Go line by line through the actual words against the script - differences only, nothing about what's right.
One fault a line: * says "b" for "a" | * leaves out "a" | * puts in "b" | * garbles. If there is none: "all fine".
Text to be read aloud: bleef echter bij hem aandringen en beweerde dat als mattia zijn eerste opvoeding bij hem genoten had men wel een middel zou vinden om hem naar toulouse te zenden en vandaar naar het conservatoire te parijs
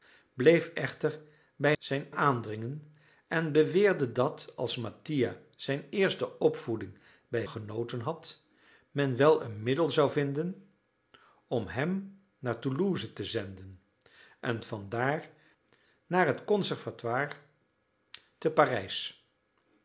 * says "zijn" for "hem"
* leaves out "hem"